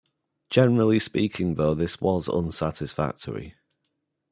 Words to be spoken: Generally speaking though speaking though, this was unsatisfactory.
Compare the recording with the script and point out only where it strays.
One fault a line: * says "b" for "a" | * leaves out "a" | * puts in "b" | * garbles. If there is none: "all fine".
* leaves out "speaking though"